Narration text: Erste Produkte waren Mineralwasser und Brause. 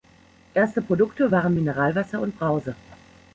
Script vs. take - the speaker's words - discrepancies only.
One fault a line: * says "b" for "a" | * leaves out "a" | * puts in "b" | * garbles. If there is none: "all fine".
all fine